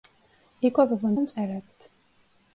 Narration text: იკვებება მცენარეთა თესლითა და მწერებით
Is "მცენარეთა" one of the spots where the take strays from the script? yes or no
yes